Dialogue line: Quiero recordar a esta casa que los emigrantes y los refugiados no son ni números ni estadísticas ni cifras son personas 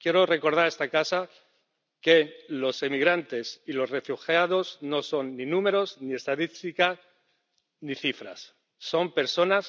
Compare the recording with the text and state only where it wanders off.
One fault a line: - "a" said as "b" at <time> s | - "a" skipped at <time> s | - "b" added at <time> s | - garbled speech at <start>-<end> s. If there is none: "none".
none